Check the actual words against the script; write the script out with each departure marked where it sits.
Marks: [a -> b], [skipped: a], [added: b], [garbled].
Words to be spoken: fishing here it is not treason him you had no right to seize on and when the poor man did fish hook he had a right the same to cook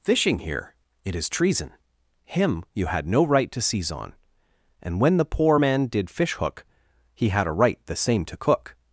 fishing here it is [skipped: not] treason him you had no right to seize on and when the poor man did fish hook he had a right the same to cook